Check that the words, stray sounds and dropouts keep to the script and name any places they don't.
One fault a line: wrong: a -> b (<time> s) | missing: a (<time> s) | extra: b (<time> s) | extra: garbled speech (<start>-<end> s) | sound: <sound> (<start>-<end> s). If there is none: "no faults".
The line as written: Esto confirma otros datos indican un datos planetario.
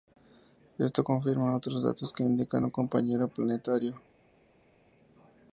extra: que (2.1 s)
wrong: datos -> compañero (2.7 s)